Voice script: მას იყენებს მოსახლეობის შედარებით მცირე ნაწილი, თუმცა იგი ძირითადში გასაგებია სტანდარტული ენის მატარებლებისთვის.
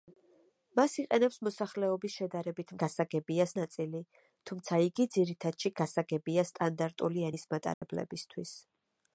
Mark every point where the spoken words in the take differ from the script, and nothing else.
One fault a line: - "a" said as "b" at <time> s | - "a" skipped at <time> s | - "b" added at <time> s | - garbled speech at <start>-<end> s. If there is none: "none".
- "მცირე" said as "გასაგებია" at 2.8 s